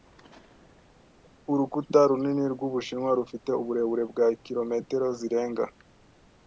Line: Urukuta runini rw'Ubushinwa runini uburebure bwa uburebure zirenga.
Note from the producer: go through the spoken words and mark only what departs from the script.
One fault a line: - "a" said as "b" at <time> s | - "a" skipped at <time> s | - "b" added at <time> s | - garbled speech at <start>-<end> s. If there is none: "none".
- "runini" said as "rufite" at 3.2 s
- "uburebure" said as "kilometero" at 4.4 s